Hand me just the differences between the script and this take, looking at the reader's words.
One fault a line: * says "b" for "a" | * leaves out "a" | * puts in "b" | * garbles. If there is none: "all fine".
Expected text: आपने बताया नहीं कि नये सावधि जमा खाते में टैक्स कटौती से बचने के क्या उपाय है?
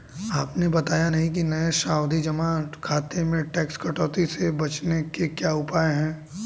all fine